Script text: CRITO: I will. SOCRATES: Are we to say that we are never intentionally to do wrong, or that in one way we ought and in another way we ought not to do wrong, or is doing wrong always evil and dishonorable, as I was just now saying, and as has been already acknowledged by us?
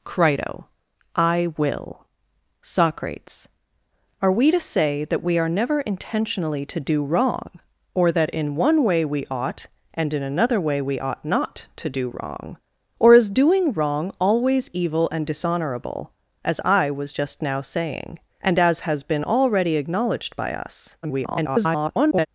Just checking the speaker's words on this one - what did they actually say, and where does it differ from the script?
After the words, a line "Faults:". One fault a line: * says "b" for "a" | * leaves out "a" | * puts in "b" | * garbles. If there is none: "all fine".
CRITO: I will. SOCRATES: Are we to say that we are never intentionally to do wrong, or that in one way we ought and in another way we ought not to do wrong, or is doing wrong always evil and dishonorable, as I was just now saying, and as has been already acknowledged by us? [garbled]
Faults:
* garbles